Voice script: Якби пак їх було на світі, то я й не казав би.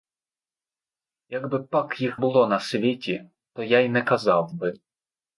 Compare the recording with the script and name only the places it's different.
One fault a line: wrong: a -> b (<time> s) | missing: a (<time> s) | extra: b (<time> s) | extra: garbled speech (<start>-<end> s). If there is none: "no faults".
no faults